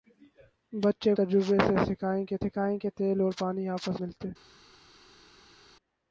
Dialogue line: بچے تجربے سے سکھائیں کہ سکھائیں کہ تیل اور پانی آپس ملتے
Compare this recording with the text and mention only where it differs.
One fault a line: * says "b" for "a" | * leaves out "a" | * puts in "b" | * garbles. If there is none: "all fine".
all fine